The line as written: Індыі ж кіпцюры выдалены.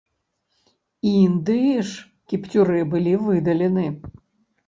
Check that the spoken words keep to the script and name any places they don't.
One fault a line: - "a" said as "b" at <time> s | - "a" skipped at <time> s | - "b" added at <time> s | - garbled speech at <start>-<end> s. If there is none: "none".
- "былі" added at 2.9 s